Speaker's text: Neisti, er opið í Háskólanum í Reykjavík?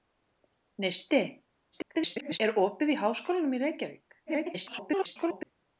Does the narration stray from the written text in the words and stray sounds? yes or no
yes